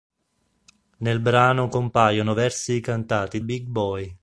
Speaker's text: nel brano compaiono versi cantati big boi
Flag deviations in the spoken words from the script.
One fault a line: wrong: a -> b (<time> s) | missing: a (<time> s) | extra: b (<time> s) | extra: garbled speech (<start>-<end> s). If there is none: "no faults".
no faults